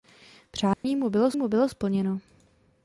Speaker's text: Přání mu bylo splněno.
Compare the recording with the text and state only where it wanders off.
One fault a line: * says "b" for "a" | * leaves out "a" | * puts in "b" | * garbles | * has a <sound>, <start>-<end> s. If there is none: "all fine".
* has a dropout, 0.7-0.8 s
* puts in "mu bylo"